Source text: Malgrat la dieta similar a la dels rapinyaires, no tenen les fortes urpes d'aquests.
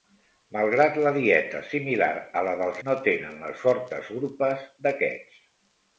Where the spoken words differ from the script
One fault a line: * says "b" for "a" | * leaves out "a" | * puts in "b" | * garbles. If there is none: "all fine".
* leaves out "rapinyaires"